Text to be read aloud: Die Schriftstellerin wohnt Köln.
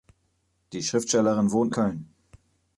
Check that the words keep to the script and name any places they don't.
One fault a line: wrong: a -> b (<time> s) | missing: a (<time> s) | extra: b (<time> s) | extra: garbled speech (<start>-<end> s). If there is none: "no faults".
no faults